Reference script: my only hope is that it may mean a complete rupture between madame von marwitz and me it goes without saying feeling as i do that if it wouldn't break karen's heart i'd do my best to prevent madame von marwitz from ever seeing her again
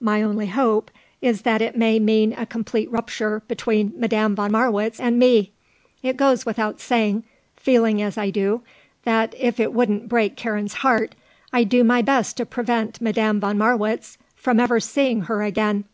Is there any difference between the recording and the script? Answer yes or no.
no